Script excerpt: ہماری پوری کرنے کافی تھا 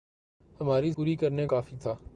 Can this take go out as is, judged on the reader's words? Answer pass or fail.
pass